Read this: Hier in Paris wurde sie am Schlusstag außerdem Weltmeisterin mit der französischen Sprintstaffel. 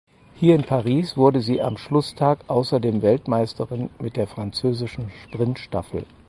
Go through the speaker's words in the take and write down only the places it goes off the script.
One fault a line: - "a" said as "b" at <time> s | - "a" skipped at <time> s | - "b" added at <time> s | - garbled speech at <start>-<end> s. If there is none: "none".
none